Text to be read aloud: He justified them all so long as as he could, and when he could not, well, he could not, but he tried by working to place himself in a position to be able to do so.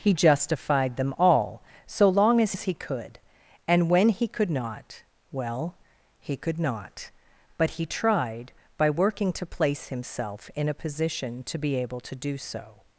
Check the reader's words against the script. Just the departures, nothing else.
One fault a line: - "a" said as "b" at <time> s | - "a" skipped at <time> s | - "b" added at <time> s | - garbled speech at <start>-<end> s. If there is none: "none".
none